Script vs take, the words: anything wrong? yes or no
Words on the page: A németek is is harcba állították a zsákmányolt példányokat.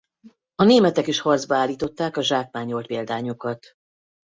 yes